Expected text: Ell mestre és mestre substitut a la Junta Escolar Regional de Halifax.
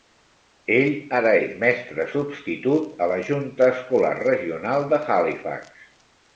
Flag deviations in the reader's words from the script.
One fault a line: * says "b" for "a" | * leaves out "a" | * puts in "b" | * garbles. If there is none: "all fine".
* says "ara" for "mestre"